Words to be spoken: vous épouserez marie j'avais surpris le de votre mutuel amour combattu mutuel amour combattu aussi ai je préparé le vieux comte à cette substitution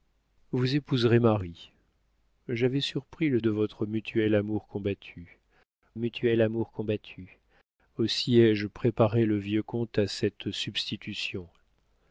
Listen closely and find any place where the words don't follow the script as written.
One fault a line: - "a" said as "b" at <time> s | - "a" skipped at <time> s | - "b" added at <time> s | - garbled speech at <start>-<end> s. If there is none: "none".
none